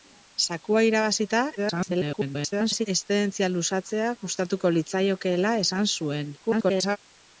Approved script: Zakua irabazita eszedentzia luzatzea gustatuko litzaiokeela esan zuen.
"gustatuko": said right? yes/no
yes